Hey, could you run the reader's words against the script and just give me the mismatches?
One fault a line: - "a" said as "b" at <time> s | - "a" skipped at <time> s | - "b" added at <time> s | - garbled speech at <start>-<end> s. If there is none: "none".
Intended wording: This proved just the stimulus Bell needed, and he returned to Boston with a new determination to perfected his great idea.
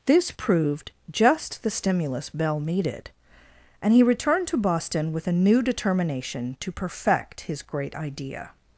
- "perfected" said as "perfect" at 6.7 s